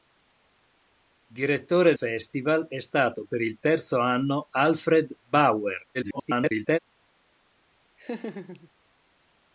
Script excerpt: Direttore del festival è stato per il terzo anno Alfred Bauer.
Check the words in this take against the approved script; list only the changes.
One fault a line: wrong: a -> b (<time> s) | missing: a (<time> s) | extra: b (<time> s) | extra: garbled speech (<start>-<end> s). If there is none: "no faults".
missing: del (1.9 s)
extra: garbled speech (5.9-6.8 s)